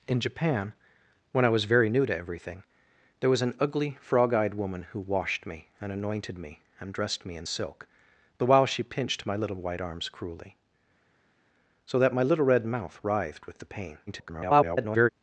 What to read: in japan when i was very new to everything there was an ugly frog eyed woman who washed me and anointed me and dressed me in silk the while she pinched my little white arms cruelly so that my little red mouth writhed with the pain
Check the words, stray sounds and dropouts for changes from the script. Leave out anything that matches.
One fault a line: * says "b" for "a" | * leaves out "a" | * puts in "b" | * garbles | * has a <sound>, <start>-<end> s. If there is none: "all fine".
* garbles